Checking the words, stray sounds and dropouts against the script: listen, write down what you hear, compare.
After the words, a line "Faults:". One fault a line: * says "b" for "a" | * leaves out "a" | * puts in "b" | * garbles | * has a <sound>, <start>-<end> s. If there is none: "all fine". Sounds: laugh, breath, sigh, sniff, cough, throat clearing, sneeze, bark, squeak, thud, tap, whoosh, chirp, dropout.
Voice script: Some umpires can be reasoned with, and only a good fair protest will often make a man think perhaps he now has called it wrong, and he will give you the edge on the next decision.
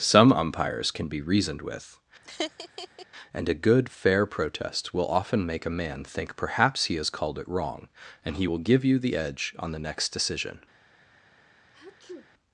Some umpires can be reasoned with, and a good fair protest will often make a man think perhaps he has called it wrong, and he will give you the edge on the next decision.
Faults:
* has a laugh, 2.2-3.1 s
* leaves out "only"
* leaves out "now"
* has a sneeze, 11.7-12.3 s